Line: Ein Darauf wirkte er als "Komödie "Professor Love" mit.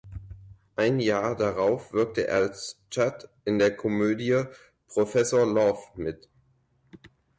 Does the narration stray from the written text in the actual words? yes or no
yes